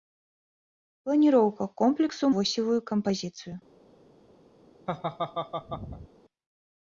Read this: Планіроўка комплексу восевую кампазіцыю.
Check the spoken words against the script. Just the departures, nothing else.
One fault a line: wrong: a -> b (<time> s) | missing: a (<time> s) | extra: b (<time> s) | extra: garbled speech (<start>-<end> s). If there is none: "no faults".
no faults